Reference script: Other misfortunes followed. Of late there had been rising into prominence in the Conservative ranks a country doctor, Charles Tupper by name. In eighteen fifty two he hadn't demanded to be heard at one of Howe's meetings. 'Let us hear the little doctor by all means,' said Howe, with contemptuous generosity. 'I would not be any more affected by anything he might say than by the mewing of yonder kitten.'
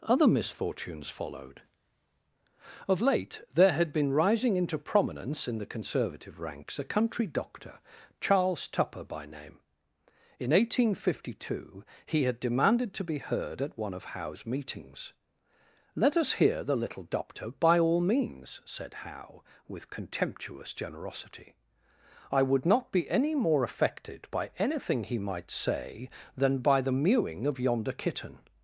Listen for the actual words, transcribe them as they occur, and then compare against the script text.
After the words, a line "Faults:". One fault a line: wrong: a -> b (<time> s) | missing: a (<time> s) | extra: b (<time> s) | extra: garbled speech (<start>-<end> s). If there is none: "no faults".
Other misfortunes followed. Of late there had been rising into prominence in the Conservative ranks a country doctor, Charles Tupper by name. In eighteen fifty two he had demanded to be heard at one of Howe's meetings. 'Let us hear the little doctor by all means,' said Howe, with contemptuous generosity. 'I would not be any more affected by anything he might say than by the mewing of yonder kitten.'
Faults:
wrong: hadn't -> had (12.2 s)